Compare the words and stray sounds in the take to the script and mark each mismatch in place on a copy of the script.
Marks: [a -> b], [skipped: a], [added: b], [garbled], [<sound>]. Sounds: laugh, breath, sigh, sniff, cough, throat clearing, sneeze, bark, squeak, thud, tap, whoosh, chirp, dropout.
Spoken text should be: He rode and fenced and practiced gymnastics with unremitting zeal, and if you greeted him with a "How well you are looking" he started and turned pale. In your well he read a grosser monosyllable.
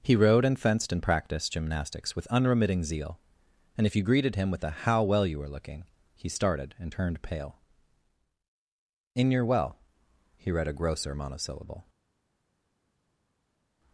He rode and fenced and practiced gymnastics with unremitting zeal, and if you greeted him with a "How well you [are -> were] looking" he started and turned pale. In your well he read a grosser monosyllable.